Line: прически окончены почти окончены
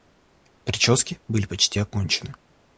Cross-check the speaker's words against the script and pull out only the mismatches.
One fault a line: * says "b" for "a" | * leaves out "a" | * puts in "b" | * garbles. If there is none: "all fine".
* says "были" for "окончены"